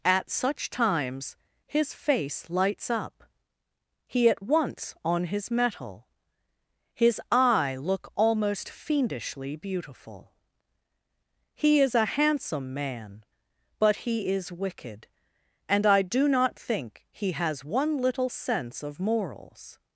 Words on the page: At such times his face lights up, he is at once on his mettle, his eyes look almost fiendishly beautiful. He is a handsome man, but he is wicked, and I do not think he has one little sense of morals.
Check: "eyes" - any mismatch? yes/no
yes